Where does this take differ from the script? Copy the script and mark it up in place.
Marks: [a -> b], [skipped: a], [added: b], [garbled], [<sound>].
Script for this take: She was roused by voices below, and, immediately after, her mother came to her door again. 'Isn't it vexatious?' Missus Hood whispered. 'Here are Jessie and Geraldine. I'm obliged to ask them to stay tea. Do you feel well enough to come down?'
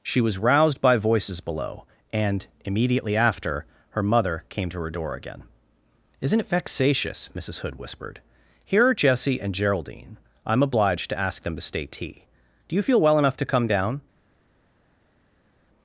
She was roused by voices below, and, immediately after, her mother came to her door again. 'Isn't it vexatious?' Missus Hood whispered. 'Here are Jessie and Geraldine. I'm obliged to ask them to stay tea. Do you feel well enough to come down?'